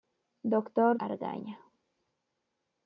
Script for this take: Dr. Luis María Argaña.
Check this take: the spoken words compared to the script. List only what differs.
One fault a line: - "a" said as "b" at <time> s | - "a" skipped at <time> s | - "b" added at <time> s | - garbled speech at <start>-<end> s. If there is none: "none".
- "Luis María" skipped at 1.0 s